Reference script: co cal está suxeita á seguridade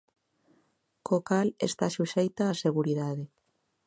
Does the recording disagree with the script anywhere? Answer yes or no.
no